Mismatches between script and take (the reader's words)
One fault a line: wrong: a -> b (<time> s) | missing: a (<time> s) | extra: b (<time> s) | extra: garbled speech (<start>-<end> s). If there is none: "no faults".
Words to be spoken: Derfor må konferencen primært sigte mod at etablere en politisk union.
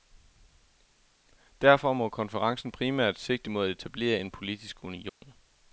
no faults